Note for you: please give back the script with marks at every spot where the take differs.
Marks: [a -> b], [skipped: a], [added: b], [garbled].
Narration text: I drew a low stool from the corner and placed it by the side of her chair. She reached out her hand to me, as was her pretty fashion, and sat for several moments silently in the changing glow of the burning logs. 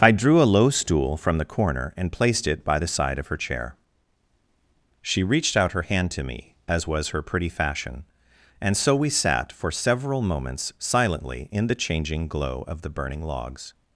I drew a low stool from the corner and placed it by the side of her chair. She reached out her hand to me, as was her pretty fashion, and [added: so we] sat for several moments silently in the changing glow of the burning logs.